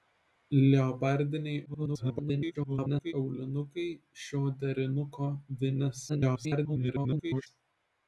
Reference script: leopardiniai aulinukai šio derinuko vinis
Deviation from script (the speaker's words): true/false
true